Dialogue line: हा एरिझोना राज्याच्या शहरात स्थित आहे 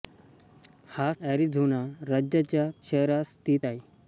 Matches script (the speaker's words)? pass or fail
pass